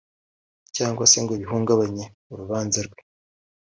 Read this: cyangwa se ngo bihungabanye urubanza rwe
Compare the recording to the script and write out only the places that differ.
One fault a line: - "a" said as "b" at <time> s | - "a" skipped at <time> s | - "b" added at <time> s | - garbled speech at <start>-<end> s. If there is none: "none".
none